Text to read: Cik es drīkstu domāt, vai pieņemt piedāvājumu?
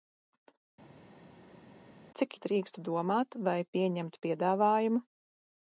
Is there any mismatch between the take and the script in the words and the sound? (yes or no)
no